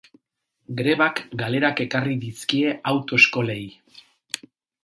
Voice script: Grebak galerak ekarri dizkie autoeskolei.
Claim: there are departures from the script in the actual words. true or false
false